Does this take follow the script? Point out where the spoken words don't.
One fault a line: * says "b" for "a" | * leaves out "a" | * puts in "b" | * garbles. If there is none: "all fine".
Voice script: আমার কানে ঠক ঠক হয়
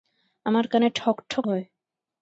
all fine